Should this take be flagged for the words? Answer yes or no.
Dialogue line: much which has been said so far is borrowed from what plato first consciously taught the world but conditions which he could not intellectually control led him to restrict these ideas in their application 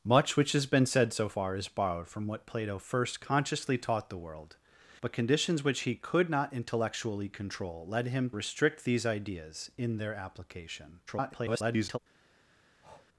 yes